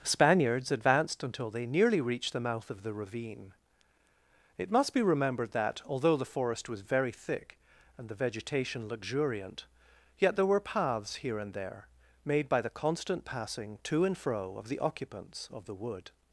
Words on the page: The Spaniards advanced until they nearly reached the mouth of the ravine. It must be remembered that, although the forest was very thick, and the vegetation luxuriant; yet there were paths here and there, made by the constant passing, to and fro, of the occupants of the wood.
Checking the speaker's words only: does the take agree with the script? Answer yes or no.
no